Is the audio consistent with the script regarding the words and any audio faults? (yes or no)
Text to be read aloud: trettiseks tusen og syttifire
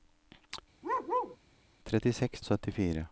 no